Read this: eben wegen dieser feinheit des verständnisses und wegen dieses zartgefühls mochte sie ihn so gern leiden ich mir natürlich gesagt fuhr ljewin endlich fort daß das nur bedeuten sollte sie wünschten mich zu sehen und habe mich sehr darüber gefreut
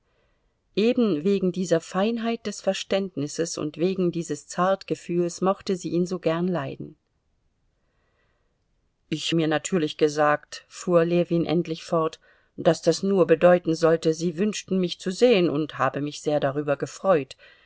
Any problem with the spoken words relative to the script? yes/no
no